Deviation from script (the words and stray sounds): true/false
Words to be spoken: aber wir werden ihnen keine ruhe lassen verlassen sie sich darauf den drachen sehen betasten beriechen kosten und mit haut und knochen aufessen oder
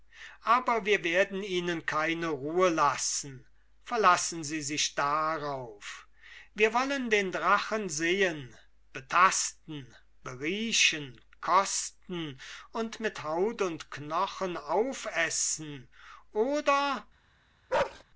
true